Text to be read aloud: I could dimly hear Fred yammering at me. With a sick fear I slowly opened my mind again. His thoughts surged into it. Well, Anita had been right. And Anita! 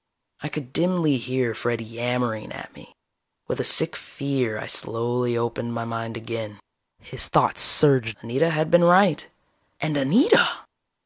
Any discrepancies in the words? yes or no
yes